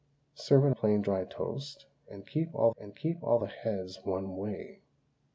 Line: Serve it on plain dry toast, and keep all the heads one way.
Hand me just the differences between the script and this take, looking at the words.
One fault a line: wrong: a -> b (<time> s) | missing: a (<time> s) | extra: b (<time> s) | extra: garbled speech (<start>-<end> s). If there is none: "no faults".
missing: on (0.7 s)
extra: and keep all (2.8 s)